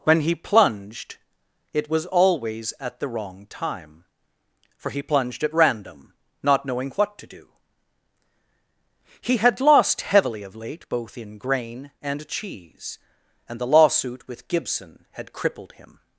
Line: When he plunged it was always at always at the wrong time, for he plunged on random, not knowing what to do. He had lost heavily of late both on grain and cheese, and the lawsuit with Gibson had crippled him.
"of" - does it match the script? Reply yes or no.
yes